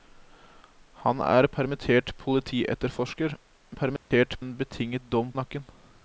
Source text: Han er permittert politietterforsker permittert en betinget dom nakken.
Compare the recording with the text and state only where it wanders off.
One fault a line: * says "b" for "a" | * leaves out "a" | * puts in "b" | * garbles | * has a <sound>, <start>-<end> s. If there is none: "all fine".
* has a dropout, 4.0-4.1 s